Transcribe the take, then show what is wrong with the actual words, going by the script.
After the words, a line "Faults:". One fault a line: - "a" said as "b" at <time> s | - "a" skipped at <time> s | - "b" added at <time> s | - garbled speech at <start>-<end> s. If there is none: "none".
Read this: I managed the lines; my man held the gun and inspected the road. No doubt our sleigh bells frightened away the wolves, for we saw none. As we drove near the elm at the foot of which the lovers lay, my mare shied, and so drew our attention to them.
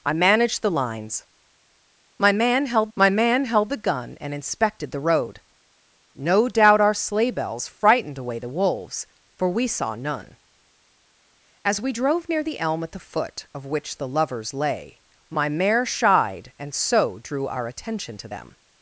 I managed the lines; my man held my man held the gun and inspected the road. No doubt our sleigh bells frightened away the wolves, for we saw none. As we drove near the elm at the foot of which the lovers lay, my mare shied, and so drew our attention to them.
Faults:
- "my man held" added at 2.9 s